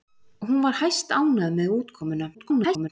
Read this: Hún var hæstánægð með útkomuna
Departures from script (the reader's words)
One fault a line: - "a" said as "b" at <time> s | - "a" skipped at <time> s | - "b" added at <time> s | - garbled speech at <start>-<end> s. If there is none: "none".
- garbled speech at 2.3-2.9 s